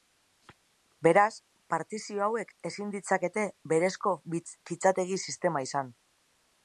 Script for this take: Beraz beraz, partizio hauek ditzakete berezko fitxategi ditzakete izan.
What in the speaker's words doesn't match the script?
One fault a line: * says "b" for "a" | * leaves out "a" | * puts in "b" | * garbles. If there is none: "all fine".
* leaves out "beraz"
* puts in "ezin"
* says "sistema" for "ditzakete"